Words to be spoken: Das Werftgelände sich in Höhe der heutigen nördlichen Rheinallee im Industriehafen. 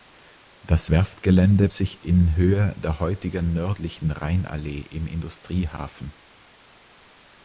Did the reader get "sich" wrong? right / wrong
right